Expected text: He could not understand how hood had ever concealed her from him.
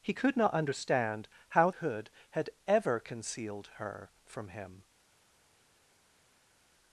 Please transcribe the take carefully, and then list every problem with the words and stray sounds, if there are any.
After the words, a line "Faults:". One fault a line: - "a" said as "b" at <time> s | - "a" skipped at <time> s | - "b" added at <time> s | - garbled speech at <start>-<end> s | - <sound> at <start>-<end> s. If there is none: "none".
He could not understand how hood had ever concealed her from him.
Faults:
none